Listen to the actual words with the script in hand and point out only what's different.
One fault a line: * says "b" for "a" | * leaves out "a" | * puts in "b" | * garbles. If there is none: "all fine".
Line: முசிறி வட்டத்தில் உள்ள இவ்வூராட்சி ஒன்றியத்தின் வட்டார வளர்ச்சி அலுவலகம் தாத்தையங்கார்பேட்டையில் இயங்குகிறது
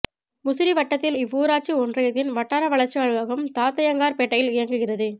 * leaves out "உள்ள"